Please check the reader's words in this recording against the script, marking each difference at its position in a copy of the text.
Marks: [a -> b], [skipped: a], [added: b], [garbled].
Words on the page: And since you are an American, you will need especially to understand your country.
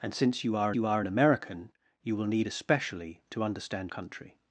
And since you are [added: you are] an American, you will need especially to understand [skipped: your] country.